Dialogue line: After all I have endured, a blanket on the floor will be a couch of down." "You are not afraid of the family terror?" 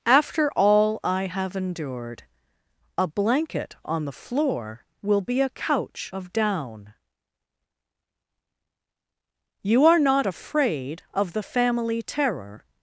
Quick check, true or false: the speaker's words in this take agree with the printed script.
true